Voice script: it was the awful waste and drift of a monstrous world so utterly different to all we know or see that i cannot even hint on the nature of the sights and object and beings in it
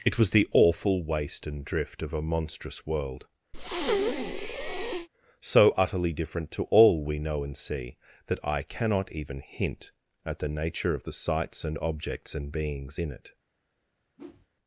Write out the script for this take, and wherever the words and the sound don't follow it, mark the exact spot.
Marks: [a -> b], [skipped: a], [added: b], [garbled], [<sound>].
it was the awful waste and drift of a monstrous world [breath] so utterly different to all we know [or -> and] see that i cannot even hint [on -> at] the nature of the sights and [object -> objects] and beings in it [whoosh]